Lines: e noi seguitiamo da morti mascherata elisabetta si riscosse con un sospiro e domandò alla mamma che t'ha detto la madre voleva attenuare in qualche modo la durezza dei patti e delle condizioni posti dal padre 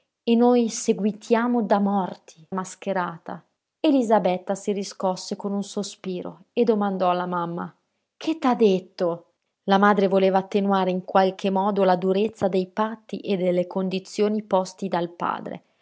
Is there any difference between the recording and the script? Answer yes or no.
no